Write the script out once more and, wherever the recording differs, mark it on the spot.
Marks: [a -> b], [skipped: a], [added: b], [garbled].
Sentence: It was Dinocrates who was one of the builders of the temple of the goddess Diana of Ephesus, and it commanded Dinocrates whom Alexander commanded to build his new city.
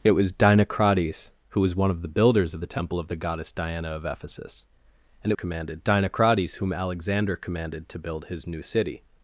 It was Dinocrates who was one of the builders of the temple of the goddess Diana of Ephesus, and it commanded Dinocrates whom Alexander commanded to build his new city.